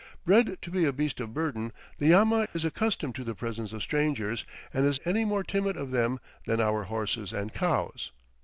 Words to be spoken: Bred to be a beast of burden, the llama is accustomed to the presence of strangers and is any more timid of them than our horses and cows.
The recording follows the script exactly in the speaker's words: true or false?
true